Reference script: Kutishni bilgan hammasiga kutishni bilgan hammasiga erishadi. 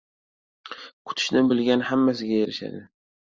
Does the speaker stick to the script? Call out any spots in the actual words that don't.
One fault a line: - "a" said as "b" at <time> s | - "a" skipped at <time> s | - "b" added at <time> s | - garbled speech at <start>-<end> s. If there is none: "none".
- "kutishni bilgan hammasiga" skipped at 2.4 s